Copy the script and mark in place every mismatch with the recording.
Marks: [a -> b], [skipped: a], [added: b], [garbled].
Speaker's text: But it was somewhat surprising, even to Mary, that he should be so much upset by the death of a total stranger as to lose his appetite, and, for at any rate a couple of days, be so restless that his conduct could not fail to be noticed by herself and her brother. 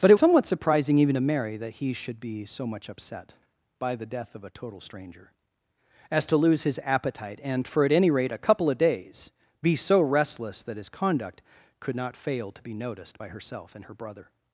But it [skipped: was] somewhat surprising, even to Mary, that he should be so much upset by the death of a total stranger as to lose his appetite, and, for at any rate a couple of days, be so restless that his conduct could not fail to be noticed by herself and her brother.